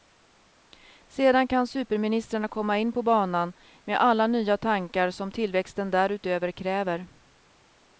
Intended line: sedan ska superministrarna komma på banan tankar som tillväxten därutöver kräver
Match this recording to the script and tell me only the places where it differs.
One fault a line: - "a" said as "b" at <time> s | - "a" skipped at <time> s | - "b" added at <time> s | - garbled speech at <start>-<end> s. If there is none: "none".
- "ska" said as "kan" at 1.5 s
- "in" added at 2.8 s
- "med alla nya" added at 3.8 s